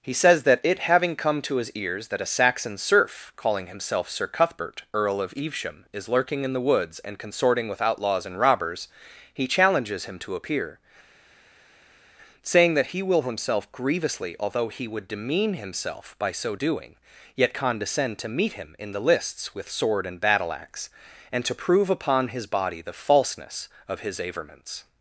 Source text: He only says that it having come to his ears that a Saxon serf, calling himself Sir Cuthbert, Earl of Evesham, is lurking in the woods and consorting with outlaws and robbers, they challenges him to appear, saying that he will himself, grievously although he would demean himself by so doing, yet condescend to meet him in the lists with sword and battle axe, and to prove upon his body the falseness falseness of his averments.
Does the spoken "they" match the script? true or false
false